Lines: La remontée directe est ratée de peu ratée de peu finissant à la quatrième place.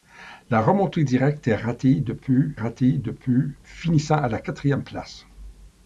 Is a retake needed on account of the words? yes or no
no